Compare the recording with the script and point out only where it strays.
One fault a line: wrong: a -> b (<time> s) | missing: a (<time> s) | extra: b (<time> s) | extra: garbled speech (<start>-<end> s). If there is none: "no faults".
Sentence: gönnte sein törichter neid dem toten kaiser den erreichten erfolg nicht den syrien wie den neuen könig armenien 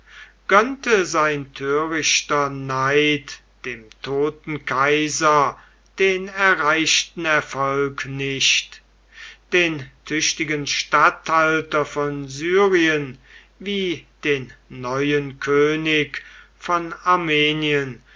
extra: tüchtigen statthalter von (10.0 s)
extra: von (16.6 s)